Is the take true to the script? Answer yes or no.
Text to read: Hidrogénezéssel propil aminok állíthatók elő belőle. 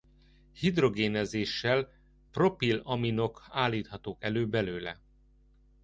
yes